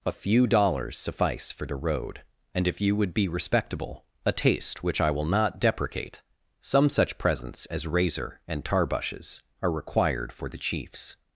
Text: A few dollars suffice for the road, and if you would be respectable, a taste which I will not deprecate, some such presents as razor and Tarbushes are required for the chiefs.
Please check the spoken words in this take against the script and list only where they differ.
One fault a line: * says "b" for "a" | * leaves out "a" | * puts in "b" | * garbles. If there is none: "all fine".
all fine